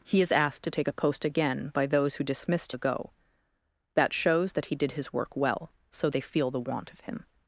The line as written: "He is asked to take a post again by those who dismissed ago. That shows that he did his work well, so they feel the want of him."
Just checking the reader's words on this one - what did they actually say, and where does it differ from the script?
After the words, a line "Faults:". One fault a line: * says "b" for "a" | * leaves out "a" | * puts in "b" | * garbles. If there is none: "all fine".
"He is asked to take a post again by those who dismissed ago. That shows that he did his work well, so they feel the want of him."
Faults:
all fine